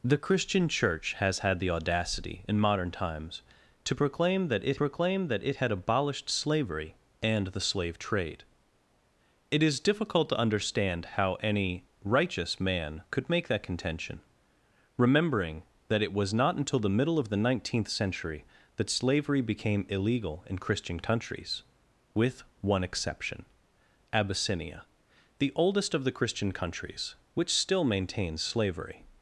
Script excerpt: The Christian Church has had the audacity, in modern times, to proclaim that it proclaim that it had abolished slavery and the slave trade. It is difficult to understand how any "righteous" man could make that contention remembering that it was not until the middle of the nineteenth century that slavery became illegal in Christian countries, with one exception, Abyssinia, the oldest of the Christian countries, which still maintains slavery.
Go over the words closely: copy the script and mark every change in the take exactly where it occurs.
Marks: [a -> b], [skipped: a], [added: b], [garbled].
The Christian Church has had the audacity, in modern times, to proclaim that it proclaim that it had abolished slavery and the slave trade. It is difficult to understand how any "righteous" man could make that contention remembering that it was not until the middle of the nineteenth century that slavery became illegal in Christian countries, with one exception, Abyssinia, the oldest of the Christian countries, which still maintains slavery.